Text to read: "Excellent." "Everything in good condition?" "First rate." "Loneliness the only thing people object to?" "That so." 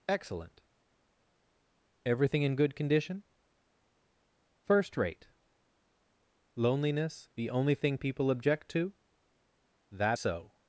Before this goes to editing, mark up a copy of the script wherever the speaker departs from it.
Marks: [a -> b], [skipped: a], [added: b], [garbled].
"Excellent." "Everything in good condition?" "First rate." "Loneliness the only thing people object to?" "That so."